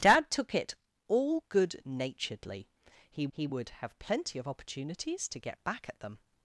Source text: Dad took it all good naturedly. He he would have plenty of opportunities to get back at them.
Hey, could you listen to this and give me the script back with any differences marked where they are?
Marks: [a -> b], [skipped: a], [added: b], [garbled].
Dad took it all good naturedly. He he would have plenty of opportunities to get back at them.